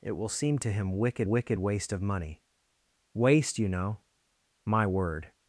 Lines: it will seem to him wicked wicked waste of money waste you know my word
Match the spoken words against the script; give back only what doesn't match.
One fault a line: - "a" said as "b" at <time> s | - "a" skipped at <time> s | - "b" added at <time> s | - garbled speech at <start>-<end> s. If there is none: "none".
none